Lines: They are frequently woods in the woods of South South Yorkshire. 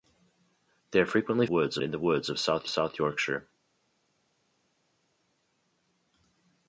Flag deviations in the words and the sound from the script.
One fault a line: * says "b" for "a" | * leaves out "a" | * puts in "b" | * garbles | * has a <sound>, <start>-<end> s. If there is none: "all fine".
all fine